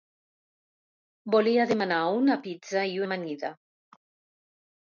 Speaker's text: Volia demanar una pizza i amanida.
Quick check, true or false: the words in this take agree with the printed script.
true